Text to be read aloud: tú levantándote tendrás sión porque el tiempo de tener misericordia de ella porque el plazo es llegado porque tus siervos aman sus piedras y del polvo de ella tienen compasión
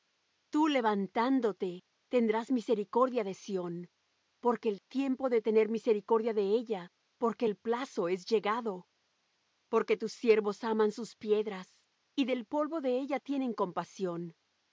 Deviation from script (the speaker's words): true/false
true